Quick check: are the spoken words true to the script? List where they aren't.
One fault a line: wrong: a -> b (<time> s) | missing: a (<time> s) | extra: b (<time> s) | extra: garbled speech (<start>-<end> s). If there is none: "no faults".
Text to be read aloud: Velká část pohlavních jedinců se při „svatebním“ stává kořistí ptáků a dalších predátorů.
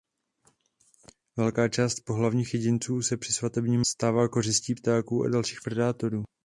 no faults